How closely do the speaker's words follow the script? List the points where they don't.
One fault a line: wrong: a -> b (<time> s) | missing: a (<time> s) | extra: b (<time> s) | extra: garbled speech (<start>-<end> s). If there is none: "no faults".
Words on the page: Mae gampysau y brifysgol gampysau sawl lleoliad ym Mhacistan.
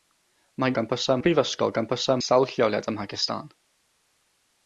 no faults